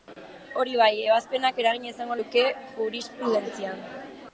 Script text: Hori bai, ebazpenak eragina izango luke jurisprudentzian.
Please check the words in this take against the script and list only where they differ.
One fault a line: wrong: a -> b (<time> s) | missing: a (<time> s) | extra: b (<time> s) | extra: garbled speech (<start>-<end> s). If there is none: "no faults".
no faults